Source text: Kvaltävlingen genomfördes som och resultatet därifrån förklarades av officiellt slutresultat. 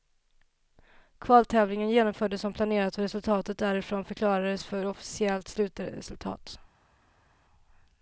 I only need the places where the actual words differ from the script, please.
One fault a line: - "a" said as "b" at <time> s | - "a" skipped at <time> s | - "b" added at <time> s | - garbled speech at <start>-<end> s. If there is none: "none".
- "planerat" added at 2.5 s
- "av" said as "för" at 4.6 s